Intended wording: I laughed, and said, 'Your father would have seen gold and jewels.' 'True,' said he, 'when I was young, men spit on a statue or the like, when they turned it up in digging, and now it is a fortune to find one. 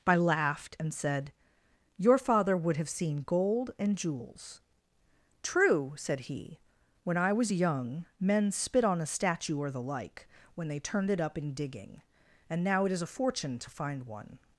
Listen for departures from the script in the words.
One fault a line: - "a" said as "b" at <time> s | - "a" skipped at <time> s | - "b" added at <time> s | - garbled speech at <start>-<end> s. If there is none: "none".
none